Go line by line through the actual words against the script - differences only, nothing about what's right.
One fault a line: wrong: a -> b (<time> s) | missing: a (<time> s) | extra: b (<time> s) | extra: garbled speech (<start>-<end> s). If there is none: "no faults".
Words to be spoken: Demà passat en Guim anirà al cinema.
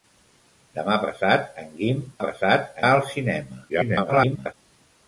wrong: anirà -> passat (2.2 s)
extra: garbled speech (3.7-4.5 s)